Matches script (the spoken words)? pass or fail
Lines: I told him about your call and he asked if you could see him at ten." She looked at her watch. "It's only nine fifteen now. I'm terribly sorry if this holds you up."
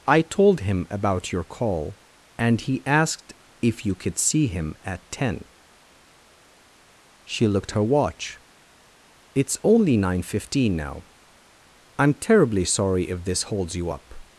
fail